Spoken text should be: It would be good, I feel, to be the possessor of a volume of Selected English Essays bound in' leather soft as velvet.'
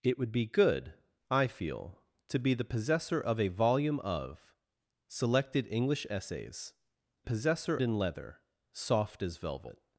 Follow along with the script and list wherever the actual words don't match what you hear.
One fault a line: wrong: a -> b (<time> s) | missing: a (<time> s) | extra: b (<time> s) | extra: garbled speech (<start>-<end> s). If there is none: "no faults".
wrong: bound -> possessor (7.2 s)